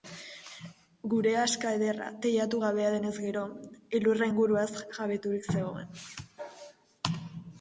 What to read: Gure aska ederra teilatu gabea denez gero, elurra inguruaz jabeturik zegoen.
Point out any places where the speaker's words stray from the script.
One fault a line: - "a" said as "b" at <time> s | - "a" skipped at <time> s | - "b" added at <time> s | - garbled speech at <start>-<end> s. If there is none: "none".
none